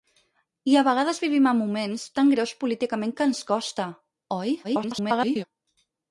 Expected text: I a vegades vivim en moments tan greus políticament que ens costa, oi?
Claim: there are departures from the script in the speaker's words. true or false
true